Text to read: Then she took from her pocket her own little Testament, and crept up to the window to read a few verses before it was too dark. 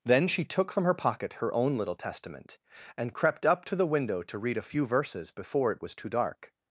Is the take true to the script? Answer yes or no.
yes